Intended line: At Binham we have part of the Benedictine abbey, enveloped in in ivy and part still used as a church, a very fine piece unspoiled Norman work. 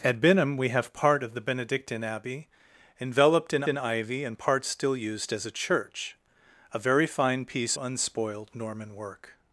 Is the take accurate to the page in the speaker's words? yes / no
yes